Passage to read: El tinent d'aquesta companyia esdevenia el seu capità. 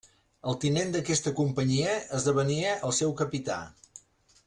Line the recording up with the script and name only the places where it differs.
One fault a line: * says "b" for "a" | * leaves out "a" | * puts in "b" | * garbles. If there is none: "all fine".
all fine